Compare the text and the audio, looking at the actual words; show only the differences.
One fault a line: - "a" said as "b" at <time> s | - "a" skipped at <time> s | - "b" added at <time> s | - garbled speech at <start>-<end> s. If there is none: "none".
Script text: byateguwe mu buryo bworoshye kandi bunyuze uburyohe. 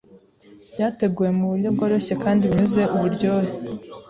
none